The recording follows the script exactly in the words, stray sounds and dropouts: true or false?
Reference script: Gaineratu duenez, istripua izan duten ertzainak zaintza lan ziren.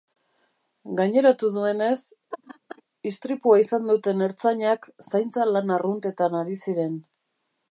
false